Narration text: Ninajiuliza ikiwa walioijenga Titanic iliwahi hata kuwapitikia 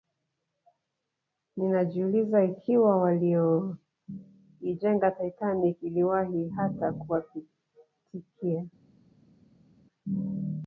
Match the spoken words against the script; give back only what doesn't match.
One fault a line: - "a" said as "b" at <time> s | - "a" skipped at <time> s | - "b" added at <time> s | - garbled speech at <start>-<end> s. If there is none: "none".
none